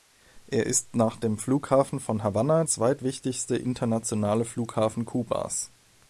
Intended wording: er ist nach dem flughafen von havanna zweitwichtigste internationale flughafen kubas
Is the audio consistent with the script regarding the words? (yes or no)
yes